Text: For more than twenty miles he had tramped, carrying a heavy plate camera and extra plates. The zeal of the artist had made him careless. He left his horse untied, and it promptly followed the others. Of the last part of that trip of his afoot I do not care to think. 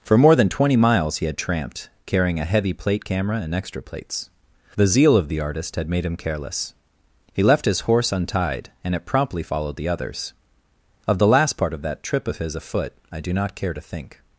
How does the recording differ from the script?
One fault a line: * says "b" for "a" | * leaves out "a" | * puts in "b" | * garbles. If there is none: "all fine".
all fine